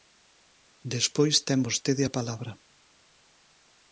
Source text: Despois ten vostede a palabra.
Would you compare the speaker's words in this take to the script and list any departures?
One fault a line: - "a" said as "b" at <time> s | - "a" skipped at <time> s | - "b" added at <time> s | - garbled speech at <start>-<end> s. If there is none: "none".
none